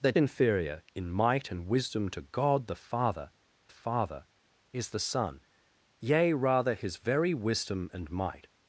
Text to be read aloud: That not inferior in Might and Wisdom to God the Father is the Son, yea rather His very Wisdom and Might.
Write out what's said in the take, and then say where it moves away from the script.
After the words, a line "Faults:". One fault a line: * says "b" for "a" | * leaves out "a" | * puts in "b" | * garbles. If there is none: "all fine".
That inferior in Might and Wisdom to God the Father Father is the Son, yea rather His very Wisdom and Might.
Faults:
* leaves out "not"
* puts in "Father"